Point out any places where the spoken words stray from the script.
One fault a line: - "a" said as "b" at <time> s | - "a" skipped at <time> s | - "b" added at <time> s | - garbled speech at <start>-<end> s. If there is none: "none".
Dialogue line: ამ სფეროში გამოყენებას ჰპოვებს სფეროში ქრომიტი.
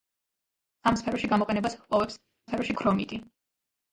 none